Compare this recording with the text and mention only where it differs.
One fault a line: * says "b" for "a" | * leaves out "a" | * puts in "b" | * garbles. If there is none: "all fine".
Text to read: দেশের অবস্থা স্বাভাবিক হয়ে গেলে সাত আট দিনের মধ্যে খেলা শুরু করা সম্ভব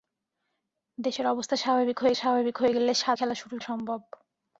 * puts in "স্বাভাবিক হয়ে"
* leaves out "আট দিনের মধ্যে"
* leaves out "করা"